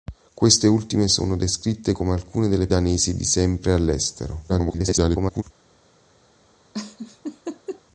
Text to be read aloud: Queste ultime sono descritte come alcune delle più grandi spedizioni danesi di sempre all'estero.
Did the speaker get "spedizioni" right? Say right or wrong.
wrong